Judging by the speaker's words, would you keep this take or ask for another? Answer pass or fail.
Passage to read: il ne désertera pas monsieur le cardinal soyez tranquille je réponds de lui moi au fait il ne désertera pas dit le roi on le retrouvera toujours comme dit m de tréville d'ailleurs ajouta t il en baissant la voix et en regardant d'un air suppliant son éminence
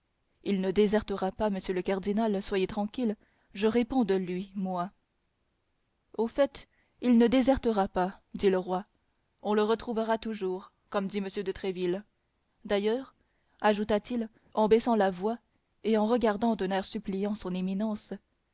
pass